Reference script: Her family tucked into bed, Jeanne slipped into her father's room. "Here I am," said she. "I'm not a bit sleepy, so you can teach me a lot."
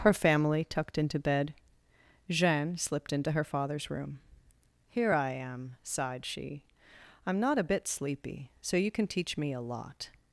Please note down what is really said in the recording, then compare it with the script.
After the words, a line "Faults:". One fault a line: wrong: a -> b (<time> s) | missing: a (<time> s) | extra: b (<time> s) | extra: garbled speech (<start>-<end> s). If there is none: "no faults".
Her family tucked into bed, Jeanne slipped into her father's room. "Here I am," sighed she. "I'm not a bit sleepy, so you can teach me a lot."
Faults:
wrong: said -> sighed (5.8 s)